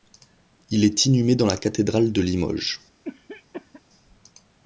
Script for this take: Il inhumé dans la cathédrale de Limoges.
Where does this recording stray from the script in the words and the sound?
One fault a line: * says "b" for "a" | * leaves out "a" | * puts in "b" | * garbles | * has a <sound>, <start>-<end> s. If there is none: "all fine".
* puts in "est"
* has a cough, 3.0-3.8 s